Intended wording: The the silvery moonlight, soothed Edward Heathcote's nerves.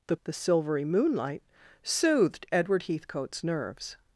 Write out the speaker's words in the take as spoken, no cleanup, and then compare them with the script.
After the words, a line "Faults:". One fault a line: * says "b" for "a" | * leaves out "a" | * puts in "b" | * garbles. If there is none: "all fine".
The the silvery moonlight, soothed Edward Heathcote's nerves.
Faults:
all fine